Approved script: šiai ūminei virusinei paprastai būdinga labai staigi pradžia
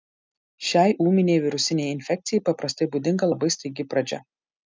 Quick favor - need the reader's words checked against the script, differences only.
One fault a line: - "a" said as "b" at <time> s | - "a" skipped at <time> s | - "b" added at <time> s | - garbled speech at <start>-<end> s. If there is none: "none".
- "infekcijai" added at 1.9 s